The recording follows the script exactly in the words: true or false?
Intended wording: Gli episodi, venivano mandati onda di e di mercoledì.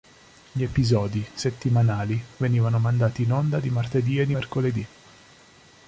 false